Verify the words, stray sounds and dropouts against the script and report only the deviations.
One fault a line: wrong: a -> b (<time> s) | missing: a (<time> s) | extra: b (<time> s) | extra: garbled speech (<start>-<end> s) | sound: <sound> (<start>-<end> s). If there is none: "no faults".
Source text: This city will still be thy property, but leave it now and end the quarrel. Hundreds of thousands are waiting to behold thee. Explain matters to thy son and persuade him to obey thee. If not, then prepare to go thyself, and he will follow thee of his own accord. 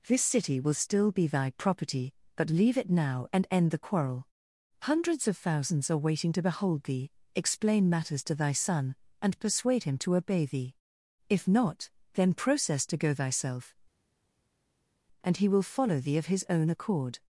wrong: prepare -> process (12.3 s)